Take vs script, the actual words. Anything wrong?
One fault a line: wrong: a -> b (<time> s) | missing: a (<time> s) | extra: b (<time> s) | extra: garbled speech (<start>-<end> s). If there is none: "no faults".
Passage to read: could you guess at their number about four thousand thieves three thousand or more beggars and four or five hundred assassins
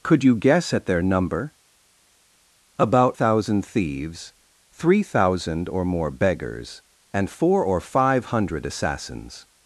missing: four (3.2 s)